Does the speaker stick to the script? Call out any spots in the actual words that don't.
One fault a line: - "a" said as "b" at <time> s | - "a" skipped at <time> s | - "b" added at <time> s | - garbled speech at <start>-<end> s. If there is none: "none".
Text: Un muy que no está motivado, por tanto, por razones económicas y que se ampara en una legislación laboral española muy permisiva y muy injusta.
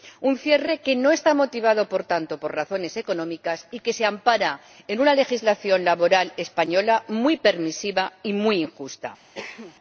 - "muy" said as "cierre" at 0.4 s